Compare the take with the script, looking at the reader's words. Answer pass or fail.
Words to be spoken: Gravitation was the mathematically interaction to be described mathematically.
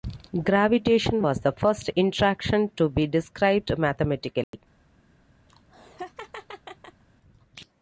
fail